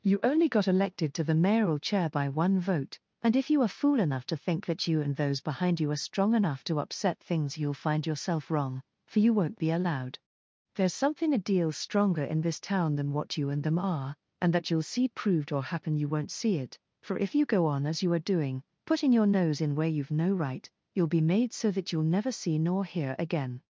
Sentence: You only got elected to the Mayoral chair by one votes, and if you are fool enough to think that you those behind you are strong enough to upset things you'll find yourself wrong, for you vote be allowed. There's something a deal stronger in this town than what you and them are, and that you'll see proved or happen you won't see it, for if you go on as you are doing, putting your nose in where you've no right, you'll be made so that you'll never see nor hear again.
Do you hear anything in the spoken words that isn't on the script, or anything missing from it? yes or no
yes